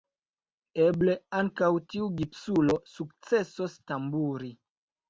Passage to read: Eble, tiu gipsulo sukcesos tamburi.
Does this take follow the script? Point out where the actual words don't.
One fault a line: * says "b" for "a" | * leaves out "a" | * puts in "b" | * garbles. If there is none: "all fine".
* puts in "ankaŭ"